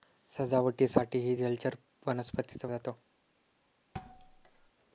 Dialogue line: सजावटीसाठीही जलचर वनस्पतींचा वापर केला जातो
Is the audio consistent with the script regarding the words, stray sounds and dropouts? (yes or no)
no